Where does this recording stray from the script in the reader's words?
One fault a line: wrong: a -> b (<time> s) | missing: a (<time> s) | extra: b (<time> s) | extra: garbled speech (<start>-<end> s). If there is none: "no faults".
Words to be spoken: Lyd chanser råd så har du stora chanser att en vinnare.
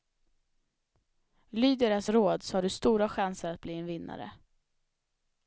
wrong: chanser -> deras (1.8 s)
extra: bli (3.6 s)